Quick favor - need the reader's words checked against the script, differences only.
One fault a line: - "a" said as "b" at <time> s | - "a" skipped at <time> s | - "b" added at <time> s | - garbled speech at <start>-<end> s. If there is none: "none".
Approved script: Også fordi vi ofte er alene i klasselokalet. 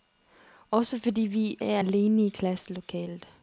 - "ofte" skipped at 1.6 s